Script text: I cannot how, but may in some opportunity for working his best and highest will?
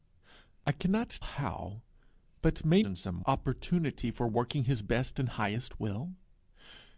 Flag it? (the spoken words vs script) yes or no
no